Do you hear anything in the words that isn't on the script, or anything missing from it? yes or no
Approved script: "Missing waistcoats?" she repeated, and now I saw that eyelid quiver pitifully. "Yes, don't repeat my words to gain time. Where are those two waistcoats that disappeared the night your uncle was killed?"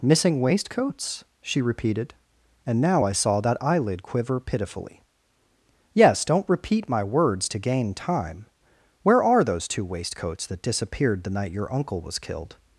no